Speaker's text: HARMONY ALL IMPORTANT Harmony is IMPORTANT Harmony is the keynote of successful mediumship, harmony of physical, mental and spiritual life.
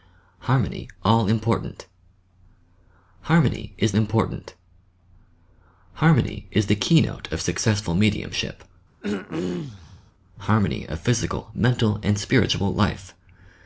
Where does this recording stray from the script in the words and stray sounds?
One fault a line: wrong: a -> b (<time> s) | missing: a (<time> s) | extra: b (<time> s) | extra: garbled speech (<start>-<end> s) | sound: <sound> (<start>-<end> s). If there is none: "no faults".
sound: throat clearing (9.0-10.1 s)